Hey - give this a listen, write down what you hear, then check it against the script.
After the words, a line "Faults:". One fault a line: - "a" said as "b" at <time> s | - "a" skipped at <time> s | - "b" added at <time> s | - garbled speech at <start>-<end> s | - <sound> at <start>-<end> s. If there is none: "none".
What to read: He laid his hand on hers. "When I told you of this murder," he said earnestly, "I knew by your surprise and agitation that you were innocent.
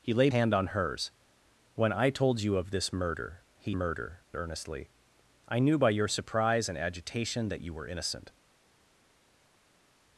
He laid hand on hers. "When I told you of this murder," he murder earnestly, "I knew by your surprise and agitation that you were innocent.
Faults:
- "his" skipped at 0.3 s
- "said" said as "murder" at 3.7 s